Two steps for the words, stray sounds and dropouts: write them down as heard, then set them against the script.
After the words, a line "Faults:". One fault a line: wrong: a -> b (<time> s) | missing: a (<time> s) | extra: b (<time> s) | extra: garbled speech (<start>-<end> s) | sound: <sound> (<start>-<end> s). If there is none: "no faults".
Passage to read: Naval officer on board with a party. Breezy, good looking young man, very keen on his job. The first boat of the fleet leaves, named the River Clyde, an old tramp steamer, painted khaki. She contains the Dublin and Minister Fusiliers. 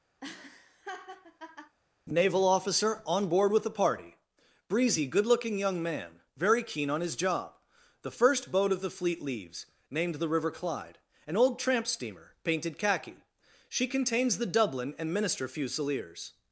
Naval officer on board with the party. Breezy, good looking young man, very keen on his job. The first boat of the fleet leaves, named the River Clyde, an old tramp steamer, painted khaki. She contains the Dublin and Minister Fusiliers.
Faults:
sound: laugh (0.2-1.8 s)
wrong: a -> the (3.6 s)